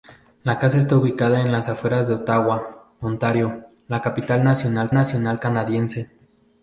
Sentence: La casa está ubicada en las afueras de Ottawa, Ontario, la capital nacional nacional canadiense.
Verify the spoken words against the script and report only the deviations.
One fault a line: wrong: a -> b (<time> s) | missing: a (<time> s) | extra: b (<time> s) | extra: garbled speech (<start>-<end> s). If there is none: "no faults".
no faults